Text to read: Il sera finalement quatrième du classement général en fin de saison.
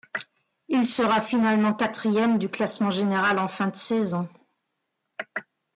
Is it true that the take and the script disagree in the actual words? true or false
false